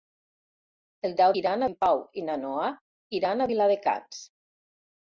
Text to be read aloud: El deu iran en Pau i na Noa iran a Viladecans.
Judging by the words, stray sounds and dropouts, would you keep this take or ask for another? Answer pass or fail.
pass